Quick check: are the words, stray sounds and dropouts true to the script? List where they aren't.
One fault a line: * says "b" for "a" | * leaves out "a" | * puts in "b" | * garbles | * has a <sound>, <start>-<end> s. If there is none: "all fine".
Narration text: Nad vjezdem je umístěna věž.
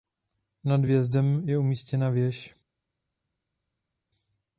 all fine